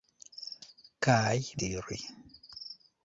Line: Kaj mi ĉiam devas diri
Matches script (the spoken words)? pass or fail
fail